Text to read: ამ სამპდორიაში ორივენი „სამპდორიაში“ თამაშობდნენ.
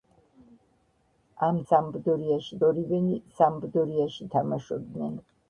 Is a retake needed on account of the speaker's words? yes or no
no